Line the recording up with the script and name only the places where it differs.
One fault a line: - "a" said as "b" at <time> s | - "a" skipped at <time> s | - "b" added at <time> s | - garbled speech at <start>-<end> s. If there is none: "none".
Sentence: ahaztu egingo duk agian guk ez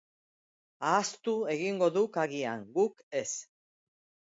none